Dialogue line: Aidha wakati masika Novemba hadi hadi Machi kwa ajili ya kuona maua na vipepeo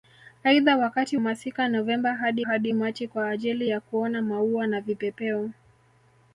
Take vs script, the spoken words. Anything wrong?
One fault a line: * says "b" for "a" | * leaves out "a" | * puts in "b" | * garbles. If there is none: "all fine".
all fine